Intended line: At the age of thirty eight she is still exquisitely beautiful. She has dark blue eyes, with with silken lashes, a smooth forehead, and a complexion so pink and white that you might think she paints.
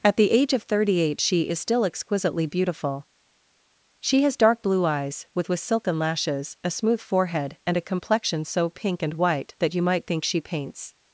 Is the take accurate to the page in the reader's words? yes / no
yes